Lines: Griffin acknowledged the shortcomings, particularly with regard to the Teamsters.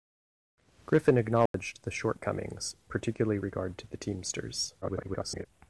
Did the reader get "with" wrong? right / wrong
wrong